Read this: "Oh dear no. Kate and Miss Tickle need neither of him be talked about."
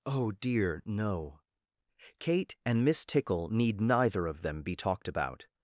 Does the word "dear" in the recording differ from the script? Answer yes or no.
no